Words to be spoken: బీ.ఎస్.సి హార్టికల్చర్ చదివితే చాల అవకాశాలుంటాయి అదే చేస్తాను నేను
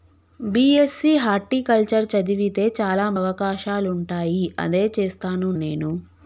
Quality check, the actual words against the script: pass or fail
pass